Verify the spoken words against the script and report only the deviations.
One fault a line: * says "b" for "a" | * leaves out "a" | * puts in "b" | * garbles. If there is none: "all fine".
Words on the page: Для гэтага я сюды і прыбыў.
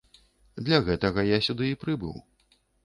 all fine